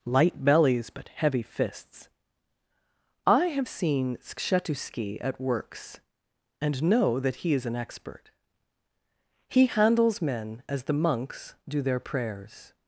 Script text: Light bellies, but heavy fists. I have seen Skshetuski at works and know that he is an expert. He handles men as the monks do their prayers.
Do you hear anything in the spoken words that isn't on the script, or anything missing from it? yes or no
no